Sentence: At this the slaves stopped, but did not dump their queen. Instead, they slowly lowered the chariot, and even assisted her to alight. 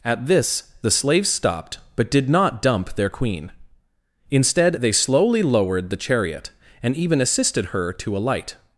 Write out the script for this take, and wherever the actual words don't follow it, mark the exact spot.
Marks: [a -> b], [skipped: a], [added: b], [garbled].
At this the slaves stopped, but did not dump their queen. Instead, they slowly lowered the chariot, and even assisted her to alight.